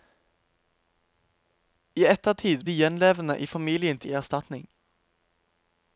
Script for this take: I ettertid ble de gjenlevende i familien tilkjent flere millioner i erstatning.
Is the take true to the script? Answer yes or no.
no